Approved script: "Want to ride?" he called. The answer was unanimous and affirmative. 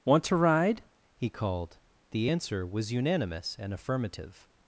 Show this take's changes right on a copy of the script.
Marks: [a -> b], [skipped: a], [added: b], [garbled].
"Want to ride?" he called. The answer was unanimous and affirmative.